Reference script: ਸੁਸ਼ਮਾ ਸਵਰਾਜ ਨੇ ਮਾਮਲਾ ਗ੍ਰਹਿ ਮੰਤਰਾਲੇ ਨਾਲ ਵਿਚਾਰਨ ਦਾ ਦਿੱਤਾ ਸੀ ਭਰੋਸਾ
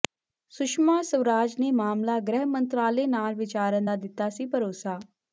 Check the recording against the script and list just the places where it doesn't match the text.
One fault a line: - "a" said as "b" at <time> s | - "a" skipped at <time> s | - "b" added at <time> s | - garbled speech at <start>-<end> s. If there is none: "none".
none